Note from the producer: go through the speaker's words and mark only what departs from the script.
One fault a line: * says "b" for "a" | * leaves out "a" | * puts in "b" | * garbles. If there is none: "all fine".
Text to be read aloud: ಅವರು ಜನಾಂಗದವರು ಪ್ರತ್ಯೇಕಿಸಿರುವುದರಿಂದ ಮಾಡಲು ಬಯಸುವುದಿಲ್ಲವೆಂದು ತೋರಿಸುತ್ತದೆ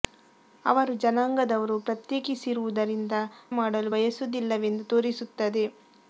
all fine